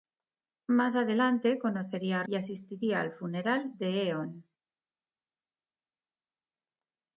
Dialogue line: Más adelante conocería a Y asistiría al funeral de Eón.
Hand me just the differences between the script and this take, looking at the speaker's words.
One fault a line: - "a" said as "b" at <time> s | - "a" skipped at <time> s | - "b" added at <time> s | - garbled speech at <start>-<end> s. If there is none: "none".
none